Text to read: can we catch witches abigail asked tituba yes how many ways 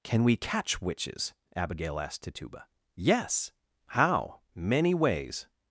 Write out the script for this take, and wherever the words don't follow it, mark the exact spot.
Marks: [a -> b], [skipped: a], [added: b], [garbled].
can we catch witches abigail asked tituba yes how many ways